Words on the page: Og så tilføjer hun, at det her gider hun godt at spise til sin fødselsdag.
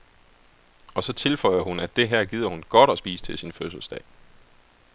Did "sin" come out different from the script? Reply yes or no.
no